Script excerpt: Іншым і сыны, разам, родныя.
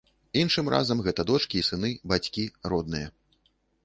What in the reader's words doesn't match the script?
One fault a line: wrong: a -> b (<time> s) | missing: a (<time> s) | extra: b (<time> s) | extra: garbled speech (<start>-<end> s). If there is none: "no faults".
extra: разам гэта дочкі (0.7 s)
wrong: разам -> бацькі (2.1 s)